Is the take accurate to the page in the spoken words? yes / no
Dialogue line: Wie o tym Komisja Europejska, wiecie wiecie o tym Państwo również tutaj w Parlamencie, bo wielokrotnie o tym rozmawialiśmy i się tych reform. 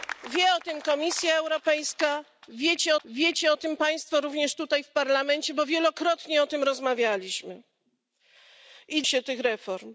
yes